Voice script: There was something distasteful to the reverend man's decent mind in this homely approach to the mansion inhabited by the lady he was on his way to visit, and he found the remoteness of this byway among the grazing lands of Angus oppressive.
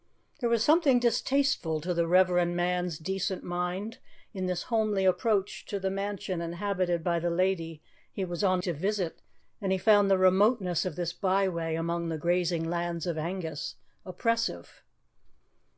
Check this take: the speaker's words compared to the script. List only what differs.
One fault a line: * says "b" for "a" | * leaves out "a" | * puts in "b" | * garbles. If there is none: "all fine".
* leaves out "his way"